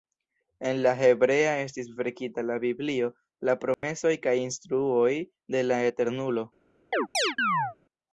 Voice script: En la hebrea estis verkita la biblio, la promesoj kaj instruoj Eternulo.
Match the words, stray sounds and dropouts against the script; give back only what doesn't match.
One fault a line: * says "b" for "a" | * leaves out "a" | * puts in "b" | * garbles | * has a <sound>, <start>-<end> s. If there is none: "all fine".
* has a dropout, 3.7-3.8 s
* puts in "de la"
* has a chirp, 6.9-7.8 s